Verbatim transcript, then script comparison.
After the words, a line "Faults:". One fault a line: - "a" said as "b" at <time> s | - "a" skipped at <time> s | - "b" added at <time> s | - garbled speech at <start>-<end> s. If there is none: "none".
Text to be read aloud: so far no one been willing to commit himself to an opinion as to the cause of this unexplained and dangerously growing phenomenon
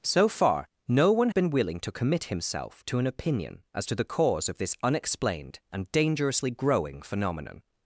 so far no one been willing to commit himself to an opinion as to the cause of this unexplained and dangerously growing phenomenon
Faults:
none